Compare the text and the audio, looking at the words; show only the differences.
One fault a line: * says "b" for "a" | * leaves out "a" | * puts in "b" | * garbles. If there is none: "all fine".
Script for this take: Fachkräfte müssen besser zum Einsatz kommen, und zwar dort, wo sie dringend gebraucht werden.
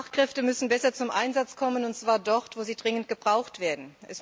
all fine